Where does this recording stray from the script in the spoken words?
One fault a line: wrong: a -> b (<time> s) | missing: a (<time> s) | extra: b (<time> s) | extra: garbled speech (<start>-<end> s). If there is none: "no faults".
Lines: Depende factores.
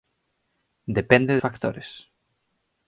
no faults